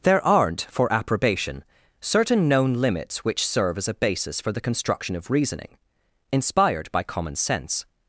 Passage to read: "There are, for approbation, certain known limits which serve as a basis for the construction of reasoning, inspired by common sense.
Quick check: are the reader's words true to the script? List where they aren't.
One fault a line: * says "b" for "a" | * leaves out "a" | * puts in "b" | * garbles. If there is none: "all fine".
* says "aren't" for "are"